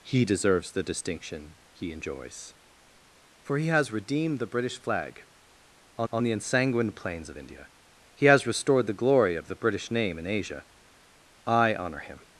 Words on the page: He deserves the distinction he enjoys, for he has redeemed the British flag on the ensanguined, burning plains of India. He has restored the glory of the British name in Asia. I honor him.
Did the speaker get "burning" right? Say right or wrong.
wrong